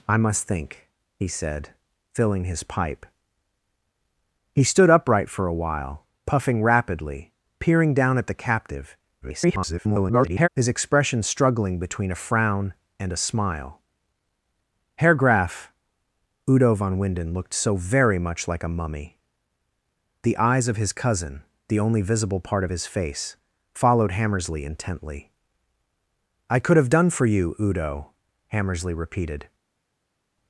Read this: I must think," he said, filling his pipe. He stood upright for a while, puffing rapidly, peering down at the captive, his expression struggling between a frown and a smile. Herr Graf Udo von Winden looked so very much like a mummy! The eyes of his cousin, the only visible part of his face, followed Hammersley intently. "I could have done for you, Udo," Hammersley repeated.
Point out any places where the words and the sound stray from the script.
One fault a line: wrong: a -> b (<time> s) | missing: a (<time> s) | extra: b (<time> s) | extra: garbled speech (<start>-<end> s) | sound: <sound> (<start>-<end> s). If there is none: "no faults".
extra: garbled speech (9.2-10.5 s)